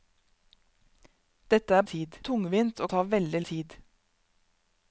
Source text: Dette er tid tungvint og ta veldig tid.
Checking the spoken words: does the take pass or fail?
pass